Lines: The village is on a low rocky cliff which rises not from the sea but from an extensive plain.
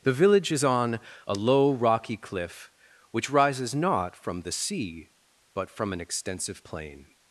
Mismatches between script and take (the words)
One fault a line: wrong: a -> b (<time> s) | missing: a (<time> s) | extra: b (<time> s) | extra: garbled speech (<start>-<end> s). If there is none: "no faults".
no faults